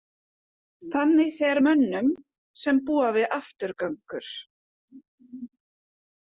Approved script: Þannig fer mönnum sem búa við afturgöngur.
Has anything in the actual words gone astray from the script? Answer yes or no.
no